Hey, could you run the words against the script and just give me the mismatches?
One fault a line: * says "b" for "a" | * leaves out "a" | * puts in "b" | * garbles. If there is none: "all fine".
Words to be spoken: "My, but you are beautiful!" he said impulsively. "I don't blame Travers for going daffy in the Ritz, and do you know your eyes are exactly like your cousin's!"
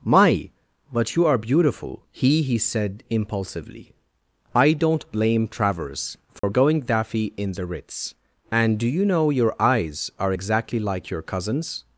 * puts in "he"